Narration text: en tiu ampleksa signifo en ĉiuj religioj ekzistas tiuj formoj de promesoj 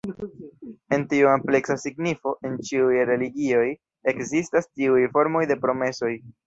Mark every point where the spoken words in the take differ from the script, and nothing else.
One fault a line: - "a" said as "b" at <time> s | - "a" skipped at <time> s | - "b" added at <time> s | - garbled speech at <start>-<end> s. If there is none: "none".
none